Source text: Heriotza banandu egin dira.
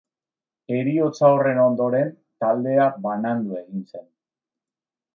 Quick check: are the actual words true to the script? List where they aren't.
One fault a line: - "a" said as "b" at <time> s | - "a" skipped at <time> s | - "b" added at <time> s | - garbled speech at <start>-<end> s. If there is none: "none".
- "horren ondoren taldea" added at 1.4 s
- "dira" said as "zen" at 3.9 s